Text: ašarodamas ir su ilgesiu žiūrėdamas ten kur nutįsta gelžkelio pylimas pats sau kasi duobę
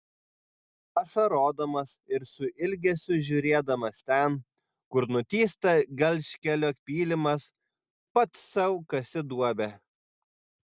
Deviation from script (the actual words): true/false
false